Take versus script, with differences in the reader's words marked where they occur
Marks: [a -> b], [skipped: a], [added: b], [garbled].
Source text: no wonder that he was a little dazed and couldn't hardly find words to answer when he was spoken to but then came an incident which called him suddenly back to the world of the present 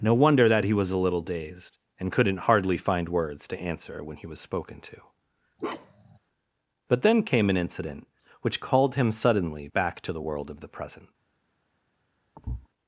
no wonder that he was a little dazed and couldn't hardly find words to answer when he was spoken to but then came an incident which called him suddenly back to the world of the present